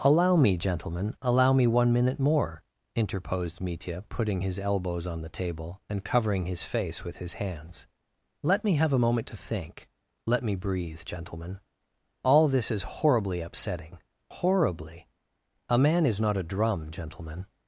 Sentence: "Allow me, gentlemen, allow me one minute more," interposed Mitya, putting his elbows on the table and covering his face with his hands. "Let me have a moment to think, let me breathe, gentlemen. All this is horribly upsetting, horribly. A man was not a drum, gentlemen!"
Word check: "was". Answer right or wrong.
wrong